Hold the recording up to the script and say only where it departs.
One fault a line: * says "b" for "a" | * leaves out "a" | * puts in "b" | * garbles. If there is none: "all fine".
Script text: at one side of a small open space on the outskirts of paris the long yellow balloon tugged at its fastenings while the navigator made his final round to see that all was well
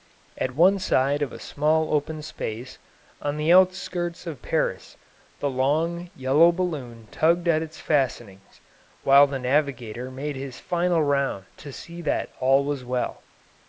all fine